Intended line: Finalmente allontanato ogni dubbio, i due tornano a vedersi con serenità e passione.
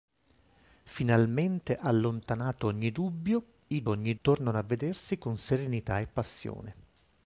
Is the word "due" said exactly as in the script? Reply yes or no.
no